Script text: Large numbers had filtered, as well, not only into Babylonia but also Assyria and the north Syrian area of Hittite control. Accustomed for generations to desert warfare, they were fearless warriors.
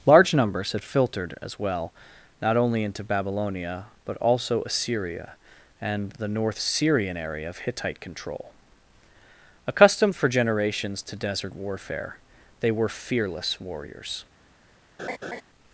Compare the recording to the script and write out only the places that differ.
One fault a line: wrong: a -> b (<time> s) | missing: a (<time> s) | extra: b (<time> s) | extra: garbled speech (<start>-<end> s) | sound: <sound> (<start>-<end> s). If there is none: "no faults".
sound: laugh (15.0-15.4 s)